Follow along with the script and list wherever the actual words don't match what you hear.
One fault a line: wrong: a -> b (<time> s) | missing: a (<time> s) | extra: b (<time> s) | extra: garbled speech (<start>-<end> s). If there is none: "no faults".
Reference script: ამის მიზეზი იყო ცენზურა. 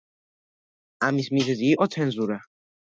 no faults